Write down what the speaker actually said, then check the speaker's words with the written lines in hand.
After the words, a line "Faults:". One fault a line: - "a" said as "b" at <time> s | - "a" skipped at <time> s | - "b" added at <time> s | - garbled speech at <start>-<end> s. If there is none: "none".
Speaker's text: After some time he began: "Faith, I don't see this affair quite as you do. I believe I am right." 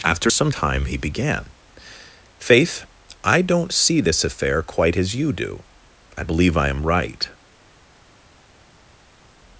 After some time he began: "Faith, I don't see this affair quite as you do. I believe I am right."
Faults:
none